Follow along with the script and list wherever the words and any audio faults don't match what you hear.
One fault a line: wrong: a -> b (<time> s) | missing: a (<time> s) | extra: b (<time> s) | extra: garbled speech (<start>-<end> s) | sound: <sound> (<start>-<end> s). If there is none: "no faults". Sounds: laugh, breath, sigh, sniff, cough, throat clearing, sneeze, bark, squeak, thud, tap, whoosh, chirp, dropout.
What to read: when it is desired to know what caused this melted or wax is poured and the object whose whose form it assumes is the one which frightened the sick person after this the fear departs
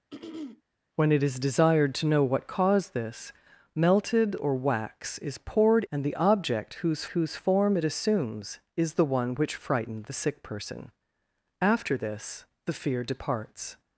sound: throat clearing (0.1-0.6 s)